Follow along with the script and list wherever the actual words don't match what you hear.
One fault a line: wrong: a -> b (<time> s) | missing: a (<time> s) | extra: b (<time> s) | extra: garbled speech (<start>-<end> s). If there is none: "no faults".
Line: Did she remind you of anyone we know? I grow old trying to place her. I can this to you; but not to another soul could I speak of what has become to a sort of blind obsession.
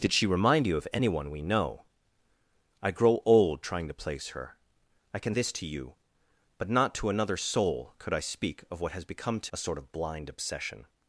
no faults